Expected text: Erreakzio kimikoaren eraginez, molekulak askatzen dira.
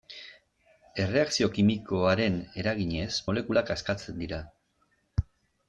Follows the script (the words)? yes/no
yes